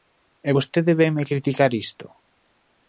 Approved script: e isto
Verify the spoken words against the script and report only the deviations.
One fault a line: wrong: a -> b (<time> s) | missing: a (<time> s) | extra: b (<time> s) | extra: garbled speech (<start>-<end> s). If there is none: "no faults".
extra: vostede vénme criticar (0.5 s)